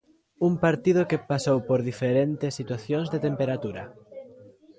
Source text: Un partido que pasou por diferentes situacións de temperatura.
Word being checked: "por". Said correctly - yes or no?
yes